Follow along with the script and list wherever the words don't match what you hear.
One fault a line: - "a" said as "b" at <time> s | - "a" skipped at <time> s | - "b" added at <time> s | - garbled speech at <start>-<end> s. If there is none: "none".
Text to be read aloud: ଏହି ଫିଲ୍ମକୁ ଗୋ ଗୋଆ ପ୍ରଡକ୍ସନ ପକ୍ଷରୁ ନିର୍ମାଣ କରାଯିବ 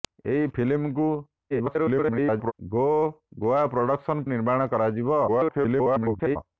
- garbled speech at 1.5-2.5 s
- "ପକ୍ଷରୁ" skipped at 4.3 s
- garbled speech at 5.3-6.4 s